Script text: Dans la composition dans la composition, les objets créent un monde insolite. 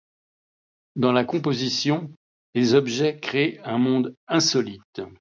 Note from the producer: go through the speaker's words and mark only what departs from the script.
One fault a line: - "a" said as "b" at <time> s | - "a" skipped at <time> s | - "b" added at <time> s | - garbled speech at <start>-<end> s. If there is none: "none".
- "dans la composition" skipped at 2.1 s